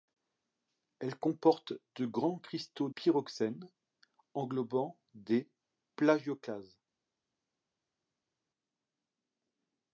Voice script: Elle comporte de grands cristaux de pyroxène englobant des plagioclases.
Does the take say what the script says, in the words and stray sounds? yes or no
no